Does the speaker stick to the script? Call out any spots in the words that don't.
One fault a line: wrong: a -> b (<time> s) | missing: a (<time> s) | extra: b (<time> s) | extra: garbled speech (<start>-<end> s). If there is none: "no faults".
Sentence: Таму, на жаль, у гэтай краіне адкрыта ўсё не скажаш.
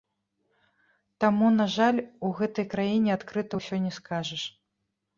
no faults